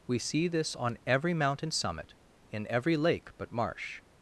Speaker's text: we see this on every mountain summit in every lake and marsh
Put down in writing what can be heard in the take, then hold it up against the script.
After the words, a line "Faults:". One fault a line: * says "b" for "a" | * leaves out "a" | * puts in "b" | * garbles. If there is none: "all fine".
we see this on every mountain summit in every lake but marsh
Faults:
* says "but" for "and"